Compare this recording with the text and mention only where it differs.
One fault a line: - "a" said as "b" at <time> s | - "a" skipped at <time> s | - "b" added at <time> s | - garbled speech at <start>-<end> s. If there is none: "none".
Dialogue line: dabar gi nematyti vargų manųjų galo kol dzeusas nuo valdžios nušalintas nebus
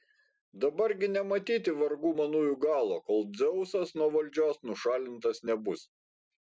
none